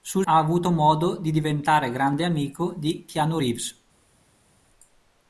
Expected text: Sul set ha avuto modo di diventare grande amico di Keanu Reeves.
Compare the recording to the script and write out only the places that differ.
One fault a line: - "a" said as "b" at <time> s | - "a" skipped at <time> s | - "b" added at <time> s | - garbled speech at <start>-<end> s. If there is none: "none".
- "set" skipped at 0.2 s